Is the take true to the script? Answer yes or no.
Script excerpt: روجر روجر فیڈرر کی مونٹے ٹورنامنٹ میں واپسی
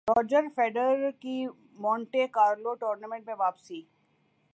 no